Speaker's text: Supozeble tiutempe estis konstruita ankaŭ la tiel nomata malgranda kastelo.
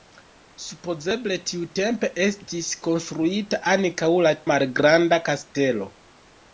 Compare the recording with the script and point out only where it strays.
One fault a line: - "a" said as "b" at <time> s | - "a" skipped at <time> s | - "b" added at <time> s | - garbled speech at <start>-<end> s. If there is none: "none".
- "tiel nomata" skipped at 4.3 s